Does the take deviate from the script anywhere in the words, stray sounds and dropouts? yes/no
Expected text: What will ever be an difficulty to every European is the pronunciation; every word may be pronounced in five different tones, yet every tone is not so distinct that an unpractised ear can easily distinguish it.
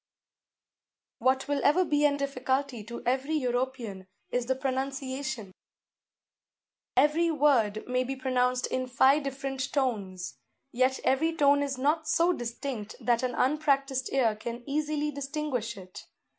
no